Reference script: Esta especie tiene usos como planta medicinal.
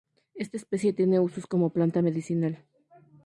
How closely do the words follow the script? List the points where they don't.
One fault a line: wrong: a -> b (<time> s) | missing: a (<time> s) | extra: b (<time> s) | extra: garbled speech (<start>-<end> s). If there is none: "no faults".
no faults